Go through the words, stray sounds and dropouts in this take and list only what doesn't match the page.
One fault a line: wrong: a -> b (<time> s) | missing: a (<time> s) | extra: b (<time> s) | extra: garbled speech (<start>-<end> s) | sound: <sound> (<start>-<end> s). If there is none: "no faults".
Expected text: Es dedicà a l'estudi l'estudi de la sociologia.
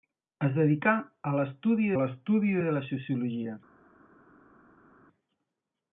no faults